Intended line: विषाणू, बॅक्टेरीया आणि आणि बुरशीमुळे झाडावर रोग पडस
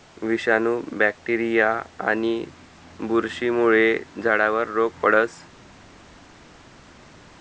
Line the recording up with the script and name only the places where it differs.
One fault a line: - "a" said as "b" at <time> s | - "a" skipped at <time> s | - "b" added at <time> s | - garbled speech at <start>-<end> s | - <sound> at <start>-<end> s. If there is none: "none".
- "आणि" skipped at 2.4 s